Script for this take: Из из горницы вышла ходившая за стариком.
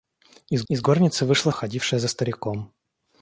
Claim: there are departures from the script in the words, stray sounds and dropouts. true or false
false